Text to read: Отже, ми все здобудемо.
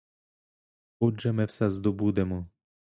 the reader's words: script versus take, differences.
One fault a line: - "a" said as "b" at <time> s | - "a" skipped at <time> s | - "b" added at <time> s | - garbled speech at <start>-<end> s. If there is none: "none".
none